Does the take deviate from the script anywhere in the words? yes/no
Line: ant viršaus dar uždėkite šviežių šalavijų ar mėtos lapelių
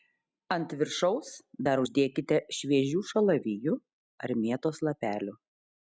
no